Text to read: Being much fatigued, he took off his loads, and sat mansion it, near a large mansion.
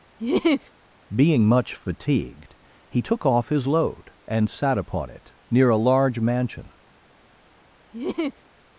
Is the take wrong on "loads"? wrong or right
wrong